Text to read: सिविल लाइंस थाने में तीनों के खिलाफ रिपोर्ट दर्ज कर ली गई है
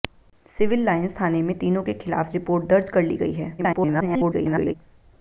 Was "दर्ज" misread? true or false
false